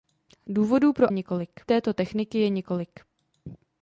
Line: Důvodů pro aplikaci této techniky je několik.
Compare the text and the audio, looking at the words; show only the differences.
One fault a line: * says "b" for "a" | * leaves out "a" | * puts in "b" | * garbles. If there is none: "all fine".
* says "několik" for "aplikaci"